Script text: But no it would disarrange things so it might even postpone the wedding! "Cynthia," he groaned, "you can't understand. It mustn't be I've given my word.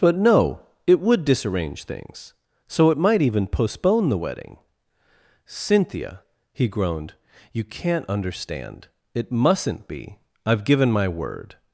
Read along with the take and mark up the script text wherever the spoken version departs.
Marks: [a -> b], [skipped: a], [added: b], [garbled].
But no it would disarrange things so it might even postpone the wedding! "Cynthia," he groaned, "you can't understand. It mustn't be I've given my word.